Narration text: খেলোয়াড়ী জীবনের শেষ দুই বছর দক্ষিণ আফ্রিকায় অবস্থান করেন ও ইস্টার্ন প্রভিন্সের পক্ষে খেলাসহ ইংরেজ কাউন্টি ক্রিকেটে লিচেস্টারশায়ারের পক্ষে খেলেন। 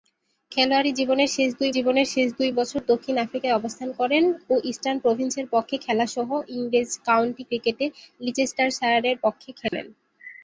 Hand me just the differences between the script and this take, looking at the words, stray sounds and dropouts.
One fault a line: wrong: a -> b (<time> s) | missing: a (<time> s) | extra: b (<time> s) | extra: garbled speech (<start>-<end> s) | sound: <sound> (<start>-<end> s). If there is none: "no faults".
extra: জীবনের শেষ দুই (1.8 s)
sound: dropout (9.7-9.7 s)